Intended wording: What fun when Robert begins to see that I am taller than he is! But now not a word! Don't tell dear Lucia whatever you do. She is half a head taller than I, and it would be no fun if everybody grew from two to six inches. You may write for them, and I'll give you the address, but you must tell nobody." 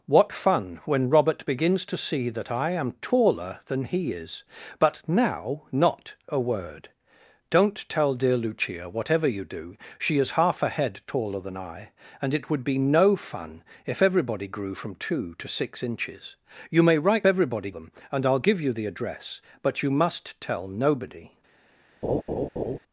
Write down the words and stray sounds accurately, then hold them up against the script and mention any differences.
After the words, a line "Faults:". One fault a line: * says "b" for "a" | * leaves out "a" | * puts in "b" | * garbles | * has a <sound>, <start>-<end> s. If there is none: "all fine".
What fun when Robert begins to see that I am taller than he is! But now not a word! Don't tell dear Lucia whatever you do. She is half a head taller than I, and it would be no fun if everybody grew from two to six inches. You may write everybody them, and I'll give you the address, but you must tell nobody."
Faults:
* says "everybody" for "for"
* has a laugh, 22.0-22.8 s